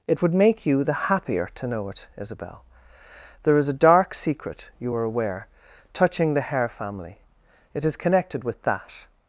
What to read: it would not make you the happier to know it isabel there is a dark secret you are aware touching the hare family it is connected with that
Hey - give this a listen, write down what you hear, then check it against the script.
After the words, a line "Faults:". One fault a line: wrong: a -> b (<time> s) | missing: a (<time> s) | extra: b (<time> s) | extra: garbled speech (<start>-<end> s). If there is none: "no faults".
it would make you the happier to know it isabel there is a dark secret you are aware touching the hare family it is connected with that
Faults:
missing: not (0.3 s)